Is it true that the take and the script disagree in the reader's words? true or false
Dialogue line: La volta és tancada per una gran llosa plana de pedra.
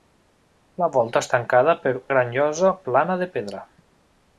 true